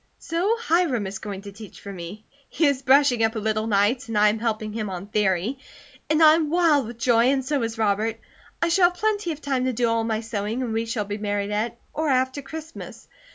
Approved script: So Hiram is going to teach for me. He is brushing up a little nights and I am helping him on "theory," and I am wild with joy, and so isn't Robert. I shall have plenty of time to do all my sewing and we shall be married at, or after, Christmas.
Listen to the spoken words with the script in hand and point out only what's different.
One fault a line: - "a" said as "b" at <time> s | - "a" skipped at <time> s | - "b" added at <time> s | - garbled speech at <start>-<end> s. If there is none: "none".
- "isn't" said as "is" at 7.6 s